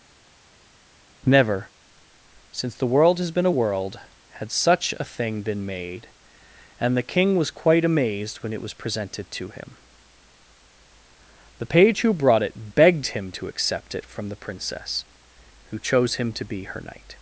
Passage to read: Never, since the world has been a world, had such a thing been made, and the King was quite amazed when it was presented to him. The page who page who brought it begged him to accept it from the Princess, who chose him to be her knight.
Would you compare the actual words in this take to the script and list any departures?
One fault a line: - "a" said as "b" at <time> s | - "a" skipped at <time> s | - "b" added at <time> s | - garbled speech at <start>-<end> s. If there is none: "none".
- "page who" skipped at 12.1 s